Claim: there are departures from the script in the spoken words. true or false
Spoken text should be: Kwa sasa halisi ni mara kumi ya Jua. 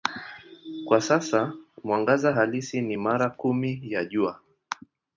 true